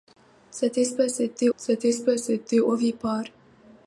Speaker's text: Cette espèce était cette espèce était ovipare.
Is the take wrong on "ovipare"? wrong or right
right